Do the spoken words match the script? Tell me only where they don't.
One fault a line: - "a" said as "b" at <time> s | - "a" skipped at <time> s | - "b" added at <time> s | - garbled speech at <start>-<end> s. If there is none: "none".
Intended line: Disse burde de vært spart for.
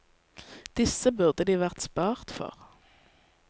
none